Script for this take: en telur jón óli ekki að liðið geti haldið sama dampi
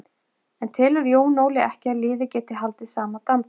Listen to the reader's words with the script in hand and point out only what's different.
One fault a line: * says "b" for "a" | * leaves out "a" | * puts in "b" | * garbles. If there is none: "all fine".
all fine